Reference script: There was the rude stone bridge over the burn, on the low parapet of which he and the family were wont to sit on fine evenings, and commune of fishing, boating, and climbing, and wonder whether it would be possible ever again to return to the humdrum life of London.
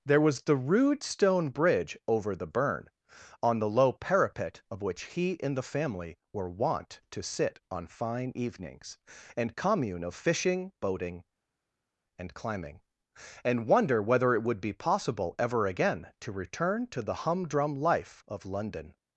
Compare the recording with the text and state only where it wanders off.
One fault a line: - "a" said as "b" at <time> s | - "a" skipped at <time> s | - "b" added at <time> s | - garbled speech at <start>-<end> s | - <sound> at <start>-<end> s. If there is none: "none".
none